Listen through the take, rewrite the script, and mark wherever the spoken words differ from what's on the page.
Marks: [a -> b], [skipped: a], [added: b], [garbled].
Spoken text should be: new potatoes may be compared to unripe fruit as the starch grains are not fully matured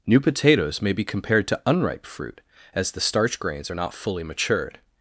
new potatoes may be compared to unripe fruit as the starch grains are not fully matured